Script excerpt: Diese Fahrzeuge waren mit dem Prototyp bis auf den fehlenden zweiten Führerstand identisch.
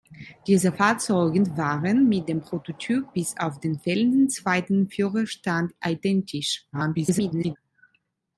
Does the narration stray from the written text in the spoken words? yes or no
yes